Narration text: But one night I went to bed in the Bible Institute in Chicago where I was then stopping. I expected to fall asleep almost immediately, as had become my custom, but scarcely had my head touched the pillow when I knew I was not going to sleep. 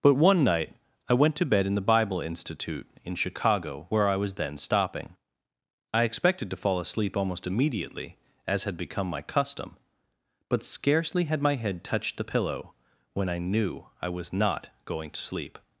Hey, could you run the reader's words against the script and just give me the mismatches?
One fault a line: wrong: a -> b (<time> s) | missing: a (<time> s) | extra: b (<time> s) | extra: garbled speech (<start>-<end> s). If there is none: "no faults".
no faults